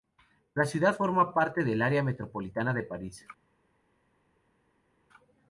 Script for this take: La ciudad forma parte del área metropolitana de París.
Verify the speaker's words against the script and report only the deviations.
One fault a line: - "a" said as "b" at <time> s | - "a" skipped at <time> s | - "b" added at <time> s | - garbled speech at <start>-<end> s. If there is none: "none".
none